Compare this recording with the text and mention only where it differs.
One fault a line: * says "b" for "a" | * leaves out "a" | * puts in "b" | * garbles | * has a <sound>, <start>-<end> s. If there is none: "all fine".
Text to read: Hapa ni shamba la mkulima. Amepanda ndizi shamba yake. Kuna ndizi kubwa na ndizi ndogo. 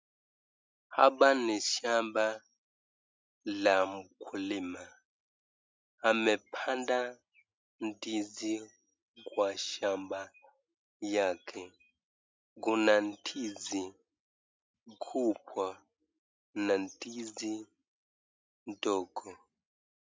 * puts in "kwa"